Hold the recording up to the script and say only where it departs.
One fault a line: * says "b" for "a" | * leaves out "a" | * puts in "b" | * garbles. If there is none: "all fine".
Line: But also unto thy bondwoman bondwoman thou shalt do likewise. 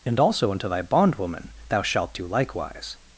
* says "And" for "But"
* leaves out "bondwoman"